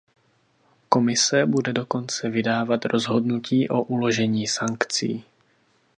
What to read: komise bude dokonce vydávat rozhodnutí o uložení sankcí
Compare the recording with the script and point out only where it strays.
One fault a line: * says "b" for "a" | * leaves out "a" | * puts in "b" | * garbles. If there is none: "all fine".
all fine